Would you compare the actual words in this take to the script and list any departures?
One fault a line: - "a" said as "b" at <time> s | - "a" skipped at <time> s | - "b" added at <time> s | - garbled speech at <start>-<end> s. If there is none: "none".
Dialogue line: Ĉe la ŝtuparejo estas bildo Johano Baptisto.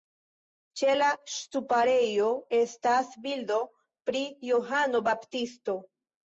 - "pri" added at 4.1 s